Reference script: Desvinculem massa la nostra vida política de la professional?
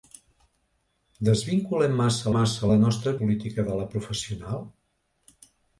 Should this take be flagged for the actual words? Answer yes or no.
yes